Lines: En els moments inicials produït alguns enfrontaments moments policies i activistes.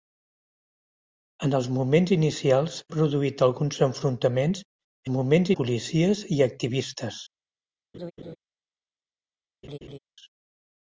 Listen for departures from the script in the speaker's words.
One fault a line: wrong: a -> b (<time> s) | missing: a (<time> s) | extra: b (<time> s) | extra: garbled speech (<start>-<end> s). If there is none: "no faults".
no faults